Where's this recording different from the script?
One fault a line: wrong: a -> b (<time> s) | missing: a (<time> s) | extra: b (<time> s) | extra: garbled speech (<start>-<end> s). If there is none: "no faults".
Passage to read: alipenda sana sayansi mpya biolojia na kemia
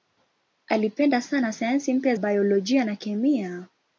no faults